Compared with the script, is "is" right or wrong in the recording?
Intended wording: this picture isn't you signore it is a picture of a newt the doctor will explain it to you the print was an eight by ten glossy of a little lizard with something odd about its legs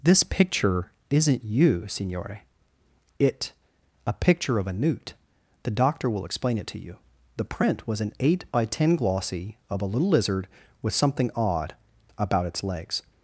wrong